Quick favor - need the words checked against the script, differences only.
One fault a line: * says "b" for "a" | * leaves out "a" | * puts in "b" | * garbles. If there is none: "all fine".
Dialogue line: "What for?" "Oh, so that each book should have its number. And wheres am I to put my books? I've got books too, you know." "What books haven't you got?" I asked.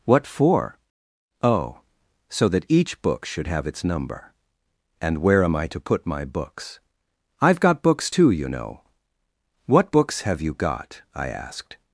* says "where" for "wheres"
* says "have" for "haven't"